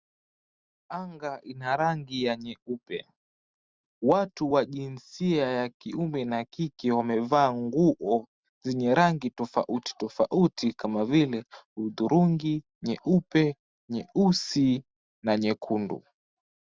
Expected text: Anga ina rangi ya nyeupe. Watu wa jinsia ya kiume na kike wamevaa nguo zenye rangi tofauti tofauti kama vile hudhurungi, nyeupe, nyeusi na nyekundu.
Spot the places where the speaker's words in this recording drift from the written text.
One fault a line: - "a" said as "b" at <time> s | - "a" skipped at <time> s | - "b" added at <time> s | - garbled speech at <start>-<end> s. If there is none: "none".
none